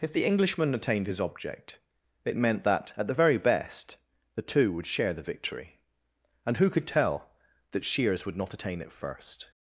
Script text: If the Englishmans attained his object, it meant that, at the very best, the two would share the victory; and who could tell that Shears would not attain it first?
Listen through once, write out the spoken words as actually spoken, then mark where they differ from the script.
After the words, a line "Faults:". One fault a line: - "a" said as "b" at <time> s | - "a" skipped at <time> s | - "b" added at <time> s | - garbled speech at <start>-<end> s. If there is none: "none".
If the Englishman attained his object, it meant that, at the very best, the two would share the victory; and who could tell that Shears would not attain it first?
Faults:
- "Englishmans" said as "Englishman" at 0.2 s